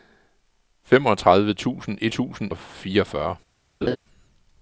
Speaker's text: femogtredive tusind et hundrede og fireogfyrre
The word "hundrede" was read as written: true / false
false